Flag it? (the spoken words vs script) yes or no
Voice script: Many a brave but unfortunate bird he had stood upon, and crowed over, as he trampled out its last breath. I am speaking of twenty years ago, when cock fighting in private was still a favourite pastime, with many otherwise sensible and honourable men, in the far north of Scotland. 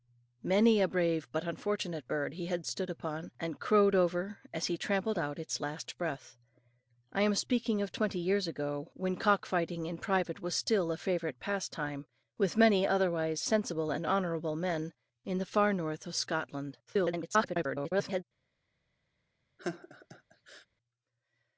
yes